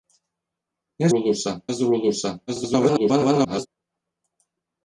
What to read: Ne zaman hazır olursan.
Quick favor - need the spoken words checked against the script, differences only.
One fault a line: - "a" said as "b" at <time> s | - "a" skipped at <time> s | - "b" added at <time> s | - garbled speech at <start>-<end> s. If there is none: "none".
- "zaman" said as "olursan" at 1.1 s
- garbled speech at 2.5-3.7 s